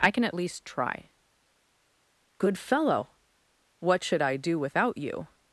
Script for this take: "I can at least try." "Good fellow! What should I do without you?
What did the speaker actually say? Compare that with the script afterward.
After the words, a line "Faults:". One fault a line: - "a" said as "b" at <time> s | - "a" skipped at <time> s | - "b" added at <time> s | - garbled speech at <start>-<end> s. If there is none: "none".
"I can at least try." "Good fellow! What should I do without you?
Faults:
none